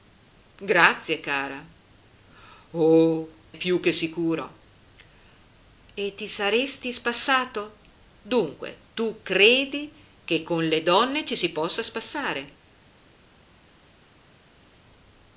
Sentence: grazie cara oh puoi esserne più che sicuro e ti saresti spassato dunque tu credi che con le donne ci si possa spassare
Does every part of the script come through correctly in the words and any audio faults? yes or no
no